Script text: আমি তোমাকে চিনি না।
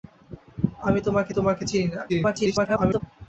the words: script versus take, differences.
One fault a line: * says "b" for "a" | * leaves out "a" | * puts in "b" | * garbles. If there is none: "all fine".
* puts in "তোমাকে"
* garbles